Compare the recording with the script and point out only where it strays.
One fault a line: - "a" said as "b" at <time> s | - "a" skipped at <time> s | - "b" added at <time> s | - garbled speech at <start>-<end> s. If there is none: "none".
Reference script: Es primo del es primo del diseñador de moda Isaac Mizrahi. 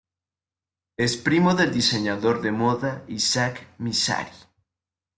- "es primo del" skipped at 1.7 s